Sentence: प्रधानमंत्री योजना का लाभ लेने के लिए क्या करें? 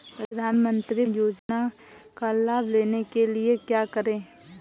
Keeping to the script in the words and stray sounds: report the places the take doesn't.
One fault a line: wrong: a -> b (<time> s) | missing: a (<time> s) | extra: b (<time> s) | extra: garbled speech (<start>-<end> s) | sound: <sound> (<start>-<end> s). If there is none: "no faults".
sound: dropout (1.4-1.5 s)